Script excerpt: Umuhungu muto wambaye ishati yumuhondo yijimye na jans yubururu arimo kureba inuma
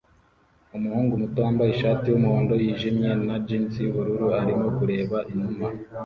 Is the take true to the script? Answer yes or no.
yes